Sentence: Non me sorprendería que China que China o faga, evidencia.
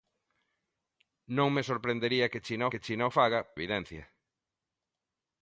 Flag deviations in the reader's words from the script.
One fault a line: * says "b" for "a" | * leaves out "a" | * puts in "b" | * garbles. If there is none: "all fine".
all fine